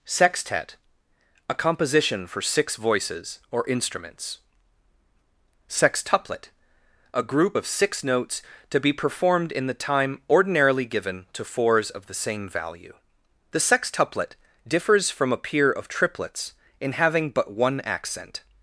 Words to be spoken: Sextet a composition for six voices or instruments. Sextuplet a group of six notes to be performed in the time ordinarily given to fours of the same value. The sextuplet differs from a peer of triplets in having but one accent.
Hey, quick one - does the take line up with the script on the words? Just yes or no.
yes